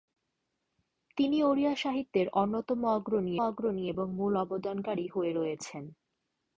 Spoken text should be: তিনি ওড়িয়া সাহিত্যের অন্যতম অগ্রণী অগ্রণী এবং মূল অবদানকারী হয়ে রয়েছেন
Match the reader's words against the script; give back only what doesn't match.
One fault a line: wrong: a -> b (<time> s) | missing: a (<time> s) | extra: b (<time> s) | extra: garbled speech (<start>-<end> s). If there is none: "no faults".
no faults